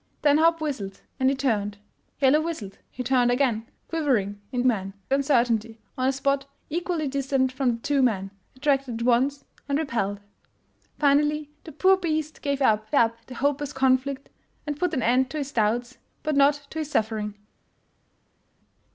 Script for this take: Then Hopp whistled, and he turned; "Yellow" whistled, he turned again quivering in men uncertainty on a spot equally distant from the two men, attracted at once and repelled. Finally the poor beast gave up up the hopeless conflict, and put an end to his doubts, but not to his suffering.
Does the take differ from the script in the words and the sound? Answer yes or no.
no